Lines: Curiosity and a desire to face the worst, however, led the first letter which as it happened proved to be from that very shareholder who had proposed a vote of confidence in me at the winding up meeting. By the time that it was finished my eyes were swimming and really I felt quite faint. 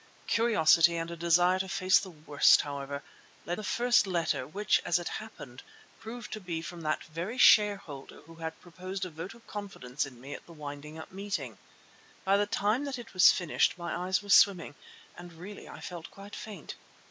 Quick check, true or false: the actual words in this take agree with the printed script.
true